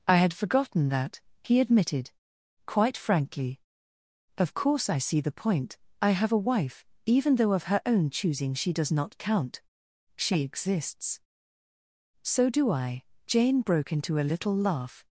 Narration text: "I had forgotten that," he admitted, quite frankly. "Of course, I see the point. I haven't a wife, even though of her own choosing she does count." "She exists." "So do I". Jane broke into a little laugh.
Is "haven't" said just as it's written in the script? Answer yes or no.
no